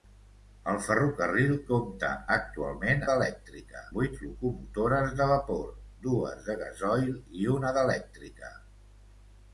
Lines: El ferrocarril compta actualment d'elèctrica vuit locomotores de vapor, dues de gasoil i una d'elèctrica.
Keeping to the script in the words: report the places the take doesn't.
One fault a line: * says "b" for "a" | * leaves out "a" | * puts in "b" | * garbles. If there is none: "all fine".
all fine